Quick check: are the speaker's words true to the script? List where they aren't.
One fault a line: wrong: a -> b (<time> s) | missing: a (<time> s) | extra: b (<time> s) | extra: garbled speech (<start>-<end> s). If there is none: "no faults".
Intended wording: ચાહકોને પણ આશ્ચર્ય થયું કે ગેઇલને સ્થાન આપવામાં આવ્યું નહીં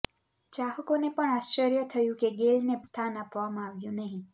no faults